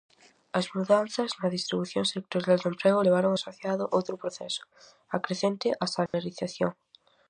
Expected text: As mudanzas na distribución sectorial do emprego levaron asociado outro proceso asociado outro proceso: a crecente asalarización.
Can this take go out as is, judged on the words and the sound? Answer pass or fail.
fail